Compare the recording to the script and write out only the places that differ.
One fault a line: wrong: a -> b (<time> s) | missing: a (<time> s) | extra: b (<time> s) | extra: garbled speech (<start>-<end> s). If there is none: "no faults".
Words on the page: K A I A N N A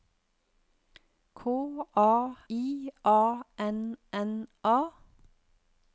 no faults